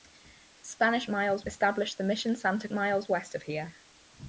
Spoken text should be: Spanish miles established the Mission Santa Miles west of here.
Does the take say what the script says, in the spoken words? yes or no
yes